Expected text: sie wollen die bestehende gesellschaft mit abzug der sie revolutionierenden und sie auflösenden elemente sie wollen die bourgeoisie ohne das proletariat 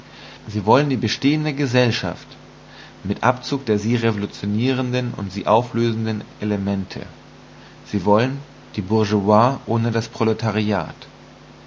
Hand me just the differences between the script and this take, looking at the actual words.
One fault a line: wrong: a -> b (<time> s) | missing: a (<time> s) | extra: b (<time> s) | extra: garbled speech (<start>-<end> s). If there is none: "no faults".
no faults